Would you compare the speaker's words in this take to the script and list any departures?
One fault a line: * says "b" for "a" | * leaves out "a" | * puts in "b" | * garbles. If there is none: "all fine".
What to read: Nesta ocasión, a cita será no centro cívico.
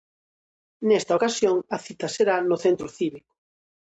all fine